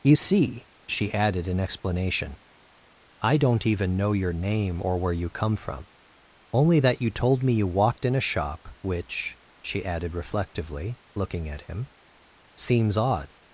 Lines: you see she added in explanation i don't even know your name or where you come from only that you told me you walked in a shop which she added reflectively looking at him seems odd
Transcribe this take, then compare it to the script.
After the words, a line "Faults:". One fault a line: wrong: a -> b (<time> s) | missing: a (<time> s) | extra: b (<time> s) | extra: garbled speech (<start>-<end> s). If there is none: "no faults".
you see she added in explanation i don't even know your name or where you come from only that you told me you walked in a shop which she added reflectively looking at him seems odd
Faults:
no faults